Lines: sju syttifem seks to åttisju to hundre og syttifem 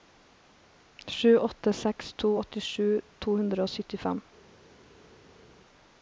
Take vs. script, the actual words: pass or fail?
fail